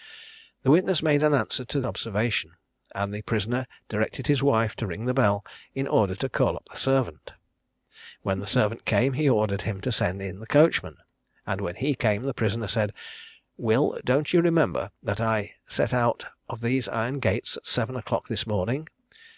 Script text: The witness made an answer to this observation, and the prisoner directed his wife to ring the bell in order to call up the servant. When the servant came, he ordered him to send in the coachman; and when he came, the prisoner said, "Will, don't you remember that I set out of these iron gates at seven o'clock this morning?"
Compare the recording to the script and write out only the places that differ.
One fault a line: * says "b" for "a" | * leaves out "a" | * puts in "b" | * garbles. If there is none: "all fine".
* leaves out "this"